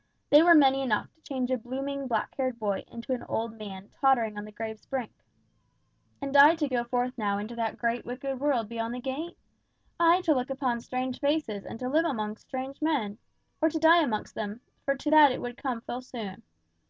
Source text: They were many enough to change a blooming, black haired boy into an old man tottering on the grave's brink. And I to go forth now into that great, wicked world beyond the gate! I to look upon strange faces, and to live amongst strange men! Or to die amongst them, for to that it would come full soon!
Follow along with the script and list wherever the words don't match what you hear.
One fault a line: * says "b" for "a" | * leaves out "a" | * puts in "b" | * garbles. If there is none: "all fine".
all fine